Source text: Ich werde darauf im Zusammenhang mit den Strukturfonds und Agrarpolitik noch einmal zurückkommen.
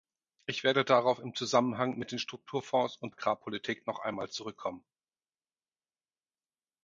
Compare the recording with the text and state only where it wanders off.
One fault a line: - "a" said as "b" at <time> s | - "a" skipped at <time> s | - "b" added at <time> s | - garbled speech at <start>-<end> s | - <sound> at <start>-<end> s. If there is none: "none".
none